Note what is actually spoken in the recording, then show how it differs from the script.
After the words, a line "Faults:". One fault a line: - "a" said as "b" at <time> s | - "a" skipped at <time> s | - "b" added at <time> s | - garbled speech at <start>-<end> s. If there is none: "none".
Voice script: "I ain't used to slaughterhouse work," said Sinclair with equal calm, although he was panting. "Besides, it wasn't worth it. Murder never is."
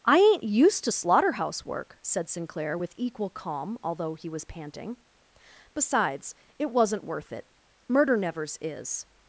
"I ain't used to slaughterhouse work," said Sinclair with equal calm, although he was panting. "Besides, it wasn't worth it. Murder nevers is."
Faults:
- "never" said as "nevers" at 8.2 s